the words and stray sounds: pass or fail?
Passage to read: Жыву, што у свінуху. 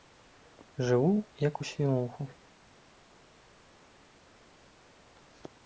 fail